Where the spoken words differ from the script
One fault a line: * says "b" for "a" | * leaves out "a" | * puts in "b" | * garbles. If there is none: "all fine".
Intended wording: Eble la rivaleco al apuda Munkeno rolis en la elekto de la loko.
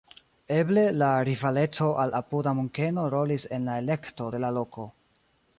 all fine